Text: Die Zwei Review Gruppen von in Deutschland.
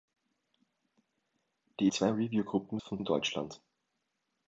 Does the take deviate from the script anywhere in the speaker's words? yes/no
no